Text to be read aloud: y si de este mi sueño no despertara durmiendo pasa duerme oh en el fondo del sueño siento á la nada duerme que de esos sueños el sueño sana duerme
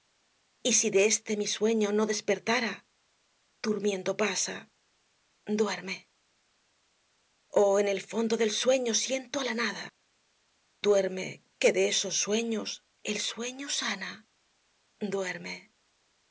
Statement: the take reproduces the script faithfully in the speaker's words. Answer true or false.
true